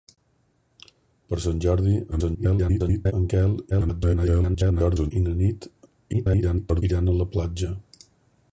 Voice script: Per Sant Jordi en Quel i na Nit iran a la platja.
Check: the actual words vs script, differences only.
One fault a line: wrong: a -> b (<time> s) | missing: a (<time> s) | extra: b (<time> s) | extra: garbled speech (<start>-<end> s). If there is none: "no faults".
extra: garbled speech (2.1-3.1 s)
extra: garbled speech (3.7-5.1 s)
extra: garbled speech (6.1-6.8 s)